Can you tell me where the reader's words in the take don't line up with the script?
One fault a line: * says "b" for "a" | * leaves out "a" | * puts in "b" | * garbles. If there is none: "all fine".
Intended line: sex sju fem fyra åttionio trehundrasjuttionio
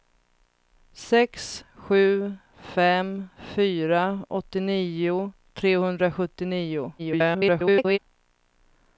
* garbles